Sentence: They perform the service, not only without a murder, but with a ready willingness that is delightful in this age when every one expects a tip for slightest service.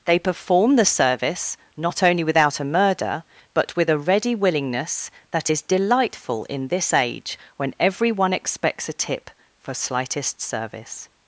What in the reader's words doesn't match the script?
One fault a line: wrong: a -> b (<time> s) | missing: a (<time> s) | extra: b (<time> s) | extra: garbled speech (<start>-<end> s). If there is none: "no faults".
no faults